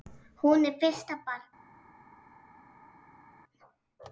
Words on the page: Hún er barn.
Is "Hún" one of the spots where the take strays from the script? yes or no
no